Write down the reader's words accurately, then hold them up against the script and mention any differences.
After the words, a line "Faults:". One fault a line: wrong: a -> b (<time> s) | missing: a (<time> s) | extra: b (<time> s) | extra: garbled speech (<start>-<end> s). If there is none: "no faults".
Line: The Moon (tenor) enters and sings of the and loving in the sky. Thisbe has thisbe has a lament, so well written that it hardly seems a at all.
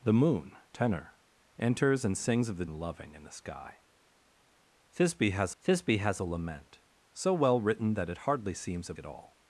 The Moon (tenor) enters and sings of the and loving in the sky. Thisbe has thisbe has a lament, so well written that it hardly seems a at all.
Faults:
no faults